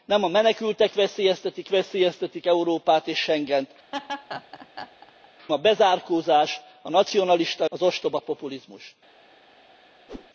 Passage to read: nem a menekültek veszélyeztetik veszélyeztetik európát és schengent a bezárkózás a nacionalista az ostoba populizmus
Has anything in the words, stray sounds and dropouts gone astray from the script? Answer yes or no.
yes